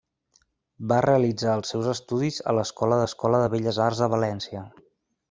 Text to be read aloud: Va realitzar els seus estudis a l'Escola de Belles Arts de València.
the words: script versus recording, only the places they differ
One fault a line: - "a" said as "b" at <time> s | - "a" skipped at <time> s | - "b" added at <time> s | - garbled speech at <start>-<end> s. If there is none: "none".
- "l'Escola" added at 3.0 s